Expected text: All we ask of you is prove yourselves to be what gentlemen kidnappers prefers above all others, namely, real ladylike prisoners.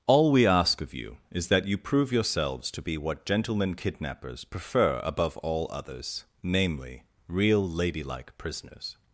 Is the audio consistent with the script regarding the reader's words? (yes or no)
no